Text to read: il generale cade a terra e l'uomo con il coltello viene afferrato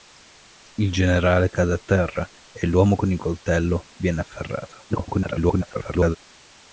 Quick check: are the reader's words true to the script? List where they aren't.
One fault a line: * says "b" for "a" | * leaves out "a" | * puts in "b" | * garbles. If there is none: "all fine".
* garbles